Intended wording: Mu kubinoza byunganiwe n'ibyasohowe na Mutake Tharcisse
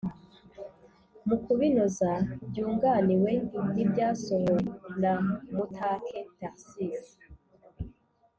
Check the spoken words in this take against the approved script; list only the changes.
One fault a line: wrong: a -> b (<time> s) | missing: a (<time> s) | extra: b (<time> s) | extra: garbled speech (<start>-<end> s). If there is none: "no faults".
no faults